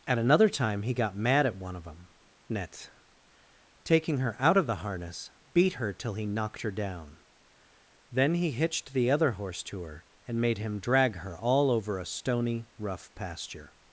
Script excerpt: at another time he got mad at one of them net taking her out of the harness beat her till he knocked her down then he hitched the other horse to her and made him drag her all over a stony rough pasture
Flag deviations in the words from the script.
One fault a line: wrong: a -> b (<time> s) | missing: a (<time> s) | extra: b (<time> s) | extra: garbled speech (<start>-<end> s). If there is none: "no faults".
no faults